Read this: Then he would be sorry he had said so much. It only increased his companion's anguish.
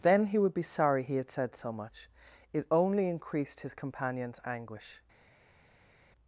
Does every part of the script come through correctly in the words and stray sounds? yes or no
yes